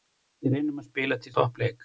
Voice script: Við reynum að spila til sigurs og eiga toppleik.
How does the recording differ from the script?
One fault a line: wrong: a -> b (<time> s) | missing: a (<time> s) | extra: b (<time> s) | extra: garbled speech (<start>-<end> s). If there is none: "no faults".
missing: sigurs og eiga (1.4 s)